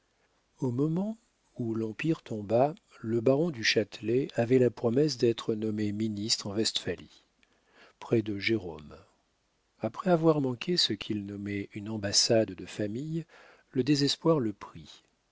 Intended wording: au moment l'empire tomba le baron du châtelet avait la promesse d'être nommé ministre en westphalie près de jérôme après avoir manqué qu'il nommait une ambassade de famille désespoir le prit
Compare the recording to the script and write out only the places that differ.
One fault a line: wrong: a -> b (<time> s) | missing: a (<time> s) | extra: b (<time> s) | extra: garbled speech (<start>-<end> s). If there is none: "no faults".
extra: où (1.6 s)
extra: ce (10.8 s)
extra: le (13.7 s)